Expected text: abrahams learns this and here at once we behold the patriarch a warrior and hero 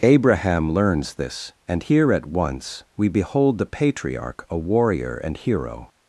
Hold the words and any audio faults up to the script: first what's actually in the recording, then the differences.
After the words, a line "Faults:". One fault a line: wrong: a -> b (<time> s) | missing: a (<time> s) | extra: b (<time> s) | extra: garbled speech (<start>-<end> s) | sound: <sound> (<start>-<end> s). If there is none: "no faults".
abraham learns this and here at once we behold the patriarch a warrior and hero
Faults:
wrong: abrahams -> abraham (0.0 s)